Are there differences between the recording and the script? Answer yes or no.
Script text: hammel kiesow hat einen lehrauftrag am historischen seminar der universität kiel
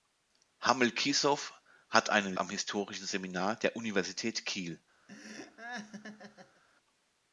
yes